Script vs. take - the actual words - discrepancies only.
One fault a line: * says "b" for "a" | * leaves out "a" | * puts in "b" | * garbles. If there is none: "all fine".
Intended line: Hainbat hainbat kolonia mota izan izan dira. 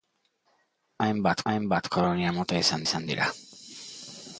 all fine